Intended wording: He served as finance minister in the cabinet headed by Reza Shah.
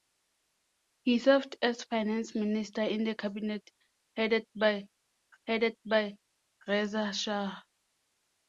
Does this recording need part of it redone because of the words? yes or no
yes